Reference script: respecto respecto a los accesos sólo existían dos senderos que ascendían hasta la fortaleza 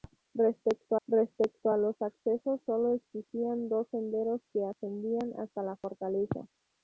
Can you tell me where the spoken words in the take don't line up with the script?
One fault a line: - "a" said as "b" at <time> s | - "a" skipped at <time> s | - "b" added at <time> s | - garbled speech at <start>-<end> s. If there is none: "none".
none